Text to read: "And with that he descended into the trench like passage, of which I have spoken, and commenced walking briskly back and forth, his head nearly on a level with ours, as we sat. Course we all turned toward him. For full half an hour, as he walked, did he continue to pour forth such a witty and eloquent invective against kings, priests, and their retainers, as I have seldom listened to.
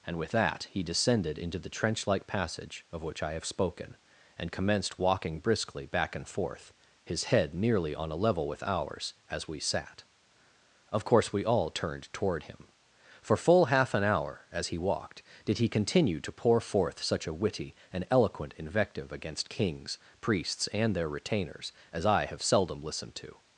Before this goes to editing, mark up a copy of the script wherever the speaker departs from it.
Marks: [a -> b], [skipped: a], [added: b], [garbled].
"And with that he descended into the trench like passage, of which I have spoken, and commenced walking briskly back and forth, his head nearly on a level with ours, as we sat. [added: Of] Course we all turned toward him. For full half an hour, as he walked, did he continue to pour forth such a witty and eloquent invective against kings, priests, and their retainers, as I have seldom listened to.